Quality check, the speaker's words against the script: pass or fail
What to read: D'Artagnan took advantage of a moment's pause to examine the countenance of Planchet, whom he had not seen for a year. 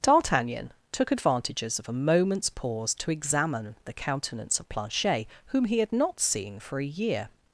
fail